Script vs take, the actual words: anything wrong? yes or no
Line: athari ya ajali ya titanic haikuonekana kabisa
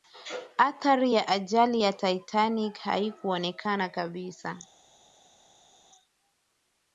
no